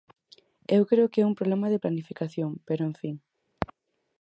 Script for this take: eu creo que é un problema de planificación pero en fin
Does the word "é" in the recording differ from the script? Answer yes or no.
no